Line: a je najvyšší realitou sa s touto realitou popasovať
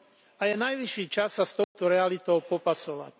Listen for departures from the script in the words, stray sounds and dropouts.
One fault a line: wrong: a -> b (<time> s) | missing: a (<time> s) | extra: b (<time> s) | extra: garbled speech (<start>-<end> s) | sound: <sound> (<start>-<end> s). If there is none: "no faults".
wrong: realitou -> čas (1.1 s)
sound: dropout (1.6-1.7 s)